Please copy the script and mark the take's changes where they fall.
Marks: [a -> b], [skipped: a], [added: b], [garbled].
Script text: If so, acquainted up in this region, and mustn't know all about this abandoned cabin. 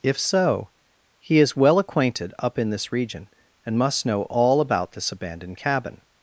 If so, [added: he is well] acquainted up in this region, and [mustn't -> must] know all about this abandoned cabin.